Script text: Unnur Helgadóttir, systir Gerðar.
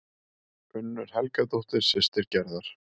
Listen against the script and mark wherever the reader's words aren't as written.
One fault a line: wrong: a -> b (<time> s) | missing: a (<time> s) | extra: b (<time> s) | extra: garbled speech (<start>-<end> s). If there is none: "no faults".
no faults